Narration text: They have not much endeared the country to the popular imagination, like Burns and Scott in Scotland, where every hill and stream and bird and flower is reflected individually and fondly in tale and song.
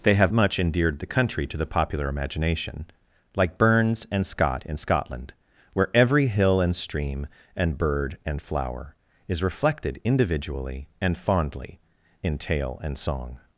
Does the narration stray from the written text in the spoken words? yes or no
yes